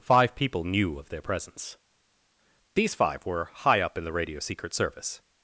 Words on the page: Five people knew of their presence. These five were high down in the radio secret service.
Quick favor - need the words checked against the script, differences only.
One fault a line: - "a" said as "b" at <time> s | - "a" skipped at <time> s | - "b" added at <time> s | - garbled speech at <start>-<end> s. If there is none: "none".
- "down" said as "up" at 3.8 s